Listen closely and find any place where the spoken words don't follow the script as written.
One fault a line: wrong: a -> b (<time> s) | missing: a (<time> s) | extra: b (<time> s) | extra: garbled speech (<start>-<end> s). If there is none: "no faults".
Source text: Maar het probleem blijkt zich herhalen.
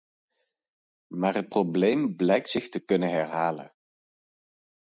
extra: te kunnen (2.7 s)